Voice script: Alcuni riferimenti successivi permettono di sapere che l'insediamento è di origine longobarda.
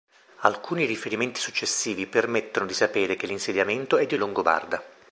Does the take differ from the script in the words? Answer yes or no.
yes